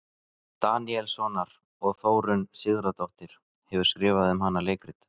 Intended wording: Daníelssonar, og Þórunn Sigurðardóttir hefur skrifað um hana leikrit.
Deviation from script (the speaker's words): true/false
false